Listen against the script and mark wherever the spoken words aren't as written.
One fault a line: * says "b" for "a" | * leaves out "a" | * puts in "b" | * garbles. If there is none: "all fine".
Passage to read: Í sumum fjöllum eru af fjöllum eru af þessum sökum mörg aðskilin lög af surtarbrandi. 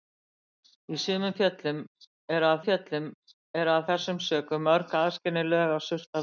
all fine